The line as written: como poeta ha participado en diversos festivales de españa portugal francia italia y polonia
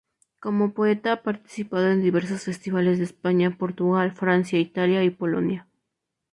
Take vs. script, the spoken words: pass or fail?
pass